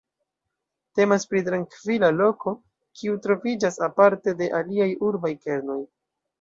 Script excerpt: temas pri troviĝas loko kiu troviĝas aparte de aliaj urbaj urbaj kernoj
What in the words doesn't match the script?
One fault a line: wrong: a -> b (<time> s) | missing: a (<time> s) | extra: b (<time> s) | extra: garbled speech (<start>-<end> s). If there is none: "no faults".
wrong: troviĝas -> trankvila (1.5 s)
missing: urbaj (5.4 s)